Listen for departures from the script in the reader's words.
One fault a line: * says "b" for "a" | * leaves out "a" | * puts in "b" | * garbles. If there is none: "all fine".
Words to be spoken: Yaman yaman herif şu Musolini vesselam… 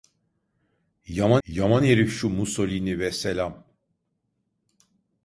all fine